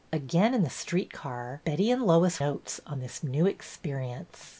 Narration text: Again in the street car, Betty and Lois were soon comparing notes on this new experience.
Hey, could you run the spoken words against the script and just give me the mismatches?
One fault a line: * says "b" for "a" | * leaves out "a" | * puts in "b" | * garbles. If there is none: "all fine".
* leaves out "were soon comparing"